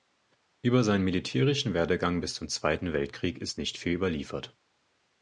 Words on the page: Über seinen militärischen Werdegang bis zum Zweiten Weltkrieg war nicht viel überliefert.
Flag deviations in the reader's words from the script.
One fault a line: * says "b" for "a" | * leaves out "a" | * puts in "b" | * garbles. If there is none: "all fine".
* says "ist" for "war"